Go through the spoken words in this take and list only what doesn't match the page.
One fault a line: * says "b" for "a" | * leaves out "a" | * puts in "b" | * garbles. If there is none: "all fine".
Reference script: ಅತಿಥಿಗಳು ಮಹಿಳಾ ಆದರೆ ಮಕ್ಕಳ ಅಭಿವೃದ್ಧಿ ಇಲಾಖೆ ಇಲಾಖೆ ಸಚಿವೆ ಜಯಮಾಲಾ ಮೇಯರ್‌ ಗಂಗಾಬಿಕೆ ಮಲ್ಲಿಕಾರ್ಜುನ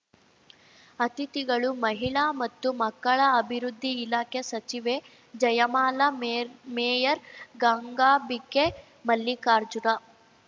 * says "ಮತ್ತು" for "ಆದರೆ"
* leaves out "ಇಲಾಖೆ"
* puts in "ಮೇರ್"